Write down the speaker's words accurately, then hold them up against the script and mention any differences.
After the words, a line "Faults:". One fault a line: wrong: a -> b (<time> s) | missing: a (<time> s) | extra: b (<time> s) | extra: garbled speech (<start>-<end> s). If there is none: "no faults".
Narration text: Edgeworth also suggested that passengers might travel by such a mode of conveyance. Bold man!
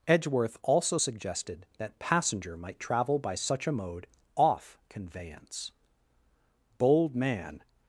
Edgeworth also suggested that passenger might travel by such a mode off conveyance. Bold man!
Faults:
wrong: passengers -> passenger (2.0 s)
wrong: of -> off (4.4 s)